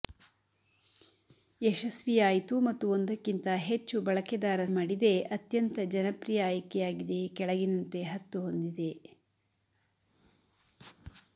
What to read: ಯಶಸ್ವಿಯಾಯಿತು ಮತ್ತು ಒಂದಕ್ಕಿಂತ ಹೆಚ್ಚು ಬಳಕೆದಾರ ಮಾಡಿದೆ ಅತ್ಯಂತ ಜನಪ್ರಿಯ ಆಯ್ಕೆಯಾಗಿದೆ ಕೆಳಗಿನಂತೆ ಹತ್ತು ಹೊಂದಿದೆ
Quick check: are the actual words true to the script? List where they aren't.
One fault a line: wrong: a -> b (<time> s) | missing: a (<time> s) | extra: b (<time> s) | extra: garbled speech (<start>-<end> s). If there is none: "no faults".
no faults